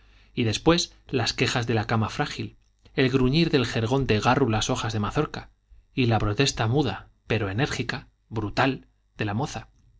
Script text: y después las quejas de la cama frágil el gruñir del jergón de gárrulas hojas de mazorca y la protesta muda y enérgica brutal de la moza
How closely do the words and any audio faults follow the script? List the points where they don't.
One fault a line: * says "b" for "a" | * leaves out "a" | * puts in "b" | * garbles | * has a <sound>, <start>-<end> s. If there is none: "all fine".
* says "pero" for "y"